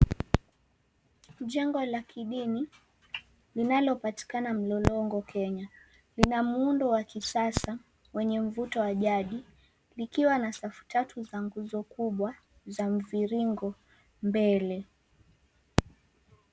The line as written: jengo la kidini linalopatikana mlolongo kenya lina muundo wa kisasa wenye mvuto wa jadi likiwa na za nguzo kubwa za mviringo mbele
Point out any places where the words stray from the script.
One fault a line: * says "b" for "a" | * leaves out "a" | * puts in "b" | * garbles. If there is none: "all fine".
* puts in "safu tatu"